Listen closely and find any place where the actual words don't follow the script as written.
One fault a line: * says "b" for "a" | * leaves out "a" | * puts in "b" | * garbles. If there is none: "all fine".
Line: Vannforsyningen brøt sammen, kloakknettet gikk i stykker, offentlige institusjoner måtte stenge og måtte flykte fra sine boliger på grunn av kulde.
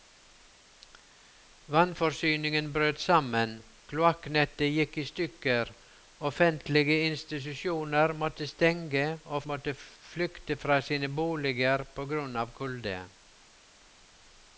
all fine